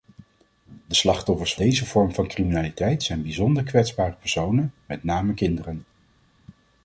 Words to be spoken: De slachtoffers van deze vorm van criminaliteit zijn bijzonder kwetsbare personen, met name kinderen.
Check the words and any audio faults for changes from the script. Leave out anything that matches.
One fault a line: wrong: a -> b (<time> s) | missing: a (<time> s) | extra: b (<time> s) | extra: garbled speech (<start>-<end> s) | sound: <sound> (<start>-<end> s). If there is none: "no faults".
missing: van (1.5 s)